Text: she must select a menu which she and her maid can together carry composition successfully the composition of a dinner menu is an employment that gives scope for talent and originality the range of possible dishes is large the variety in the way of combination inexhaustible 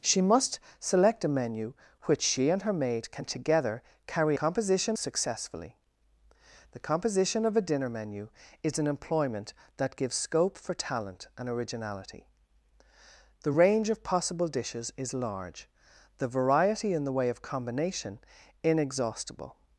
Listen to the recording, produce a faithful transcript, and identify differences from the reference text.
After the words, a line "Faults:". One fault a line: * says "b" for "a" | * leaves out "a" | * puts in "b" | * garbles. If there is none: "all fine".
she must select a menu which she and her maid can together carry composition successfully the composition of a dinner menu is an employment that gives scope for talent and originality the range of possible dishes is large the variety in the way of combination inexhaustible
Faults:
all fine